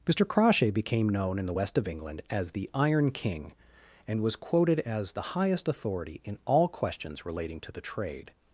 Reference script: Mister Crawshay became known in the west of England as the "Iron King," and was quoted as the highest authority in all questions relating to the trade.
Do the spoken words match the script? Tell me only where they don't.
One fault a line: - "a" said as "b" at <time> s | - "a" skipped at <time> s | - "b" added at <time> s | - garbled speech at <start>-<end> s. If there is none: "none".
none